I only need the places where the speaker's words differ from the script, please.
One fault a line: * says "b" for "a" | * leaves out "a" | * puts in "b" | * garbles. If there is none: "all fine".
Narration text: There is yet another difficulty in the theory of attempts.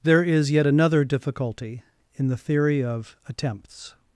all fine